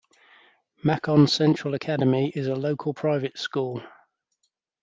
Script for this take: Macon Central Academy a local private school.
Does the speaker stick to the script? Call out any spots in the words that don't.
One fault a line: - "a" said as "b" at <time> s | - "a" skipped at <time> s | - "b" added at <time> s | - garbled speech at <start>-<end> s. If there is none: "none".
- "is" added at 2.4 s